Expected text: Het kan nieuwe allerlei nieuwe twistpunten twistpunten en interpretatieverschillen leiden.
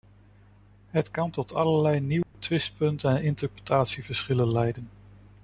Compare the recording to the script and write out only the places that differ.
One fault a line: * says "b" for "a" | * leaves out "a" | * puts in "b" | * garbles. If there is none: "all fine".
* says "tot" for "nieuwe"
* leaves out "twistpunten"